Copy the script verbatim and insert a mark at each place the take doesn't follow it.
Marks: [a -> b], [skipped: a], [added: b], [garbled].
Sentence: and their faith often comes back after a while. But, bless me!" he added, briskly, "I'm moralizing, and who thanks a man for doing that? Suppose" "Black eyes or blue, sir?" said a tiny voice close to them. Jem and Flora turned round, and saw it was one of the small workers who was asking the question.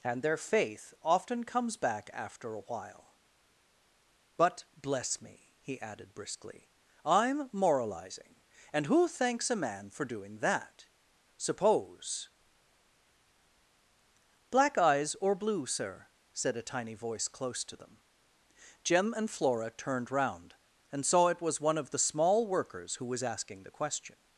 and their faith often comes back after a while. But, bless me!" he added, briskly, "I'm moralizing, and who thanks a man for doing that? Suppose" "Black eyes or blue, sir?" said a tiny voice close to them. Jem and Flora turned round, and saw it was one of the small workers who was asking the question.